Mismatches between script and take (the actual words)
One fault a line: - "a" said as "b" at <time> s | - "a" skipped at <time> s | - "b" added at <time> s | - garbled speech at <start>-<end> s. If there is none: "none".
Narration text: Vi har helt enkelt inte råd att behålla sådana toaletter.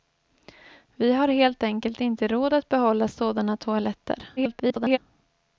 - garbled speech at 4.4-5.0 s